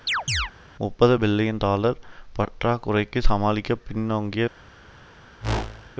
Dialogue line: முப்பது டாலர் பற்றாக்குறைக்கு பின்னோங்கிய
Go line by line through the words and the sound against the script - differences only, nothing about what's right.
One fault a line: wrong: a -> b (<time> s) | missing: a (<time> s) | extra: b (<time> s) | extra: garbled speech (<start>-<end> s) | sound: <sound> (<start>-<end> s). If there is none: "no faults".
sound: chirp (0.1-0.5 s)
extra: பில்லியன் (1.2 s)
extra: சமாளிக்க (3.2 s)
sound: whoosh (5.4-5.9 s)